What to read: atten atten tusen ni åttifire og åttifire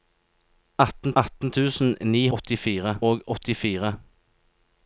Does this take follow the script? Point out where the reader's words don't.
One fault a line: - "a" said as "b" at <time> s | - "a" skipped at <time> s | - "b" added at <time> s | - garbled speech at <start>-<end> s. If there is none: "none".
none